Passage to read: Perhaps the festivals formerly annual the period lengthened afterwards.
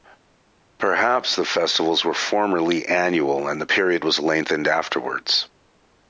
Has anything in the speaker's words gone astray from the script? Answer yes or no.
yes